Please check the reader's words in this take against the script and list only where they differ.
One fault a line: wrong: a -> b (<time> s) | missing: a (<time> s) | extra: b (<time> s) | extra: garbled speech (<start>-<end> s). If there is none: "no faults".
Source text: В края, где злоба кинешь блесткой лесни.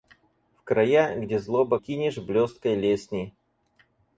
no faults